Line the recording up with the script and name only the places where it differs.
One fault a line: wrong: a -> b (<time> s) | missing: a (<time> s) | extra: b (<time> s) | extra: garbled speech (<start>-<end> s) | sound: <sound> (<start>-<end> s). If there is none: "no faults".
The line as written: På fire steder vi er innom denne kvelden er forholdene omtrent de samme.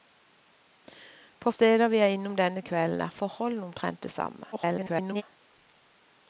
missing: fire (1.5 s)
extra: garbled speech (4.5-5.2 s)